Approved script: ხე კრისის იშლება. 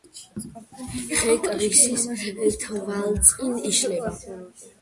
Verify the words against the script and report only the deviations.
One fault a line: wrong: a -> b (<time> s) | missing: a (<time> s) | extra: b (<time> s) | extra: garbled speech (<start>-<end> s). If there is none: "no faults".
extra: თვალწინ (2.6 s)